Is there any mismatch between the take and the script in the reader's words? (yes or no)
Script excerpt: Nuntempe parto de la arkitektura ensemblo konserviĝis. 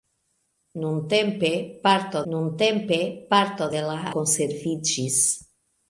yes